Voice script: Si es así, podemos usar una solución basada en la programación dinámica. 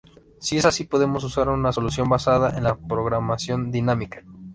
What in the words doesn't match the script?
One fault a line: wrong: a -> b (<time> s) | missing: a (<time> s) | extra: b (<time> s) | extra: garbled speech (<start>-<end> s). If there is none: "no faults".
no faults